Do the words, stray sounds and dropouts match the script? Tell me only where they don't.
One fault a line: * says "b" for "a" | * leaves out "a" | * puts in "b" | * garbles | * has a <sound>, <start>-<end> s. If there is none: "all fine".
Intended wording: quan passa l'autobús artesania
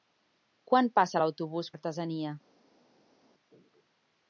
all fine